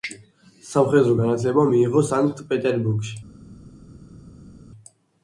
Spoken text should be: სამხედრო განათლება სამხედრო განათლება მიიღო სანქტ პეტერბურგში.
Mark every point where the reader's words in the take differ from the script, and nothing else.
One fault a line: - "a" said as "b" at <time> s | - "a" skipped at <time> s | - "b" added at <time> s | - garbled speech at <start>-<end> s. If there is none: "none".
- "სამხედრო განათლება" skipped at 1.6 s